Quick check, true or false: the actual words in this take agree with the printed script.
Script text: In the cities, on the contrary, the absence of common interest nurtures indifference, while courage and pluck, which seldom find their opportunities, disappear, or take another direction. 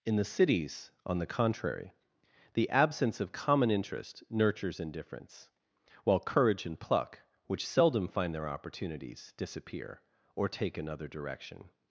true